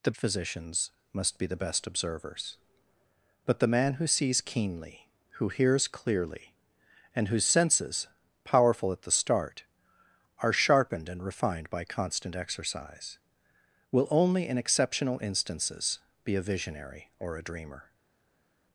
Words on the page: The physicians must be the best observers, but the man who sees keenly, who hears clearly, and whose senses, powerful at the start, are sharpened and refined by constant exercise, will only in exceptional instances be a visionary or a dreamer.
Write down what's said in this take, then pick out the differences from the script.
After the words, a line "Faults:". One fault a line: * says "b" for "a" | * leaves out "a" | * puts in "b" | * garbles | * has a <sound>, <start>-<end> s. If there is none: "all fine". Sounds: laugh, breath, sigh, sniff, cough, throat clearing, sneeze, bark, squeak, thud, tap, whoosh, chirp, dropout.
The physicians must be the best observers, but the man who sees keenly, who hears clearly, and whose senses, powerful at the start, are sharpened and refined by constant exercise, will only in exceptional instances be a visionary or a dreamer.
Faults:
all fine